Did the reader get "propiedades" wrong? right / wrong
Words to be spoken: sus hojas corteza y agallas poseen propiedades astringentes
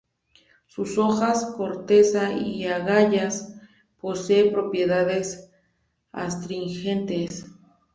right